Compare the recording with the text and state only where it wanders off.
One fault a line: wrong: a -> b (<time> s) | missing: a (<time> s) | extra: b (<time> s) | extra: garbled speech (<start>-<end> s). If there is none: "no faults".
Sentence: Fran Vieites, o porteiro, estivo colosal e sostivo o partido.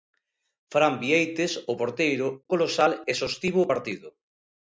missing: estivo (2.3 s)